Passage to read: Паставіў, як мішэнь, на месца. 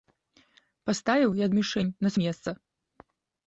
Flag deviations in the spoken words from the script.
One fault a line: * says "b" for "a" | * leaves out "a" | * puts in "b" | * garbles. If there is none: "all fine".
all fine